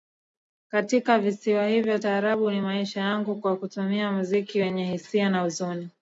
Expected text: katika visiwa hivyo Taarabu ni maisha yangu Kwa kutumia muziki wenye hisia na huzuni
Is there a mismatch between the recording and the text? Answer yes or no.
no